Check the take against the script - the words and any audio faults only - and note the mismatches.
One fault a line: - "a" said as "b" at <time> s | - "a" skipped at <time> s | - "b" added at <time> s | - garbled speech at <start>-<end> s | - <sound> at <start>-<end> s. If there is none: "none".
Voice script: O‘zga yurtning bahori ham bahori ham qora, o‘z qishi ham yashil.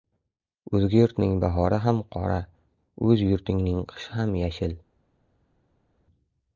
- "bahori ham" skipped at 2.0 s
- "yurtingning" added at 3.3 s